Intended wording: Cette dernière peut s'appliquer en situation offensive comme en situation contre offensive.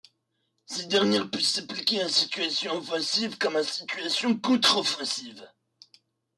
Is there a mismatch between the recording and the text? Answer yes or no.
no